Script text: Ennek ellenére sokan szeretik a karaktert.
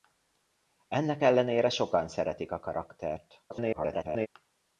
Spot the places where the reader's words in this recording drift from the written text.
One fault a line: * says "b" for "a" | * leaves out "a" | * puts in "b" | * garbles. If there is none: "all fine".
* garbles